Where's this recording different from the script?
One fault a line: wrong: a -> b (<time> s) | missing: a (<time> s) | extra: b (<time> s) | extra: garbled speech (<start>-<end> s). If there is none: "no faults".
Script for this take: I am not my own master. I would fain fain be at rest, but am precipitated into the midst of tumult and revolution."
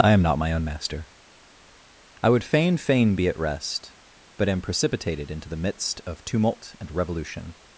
no faults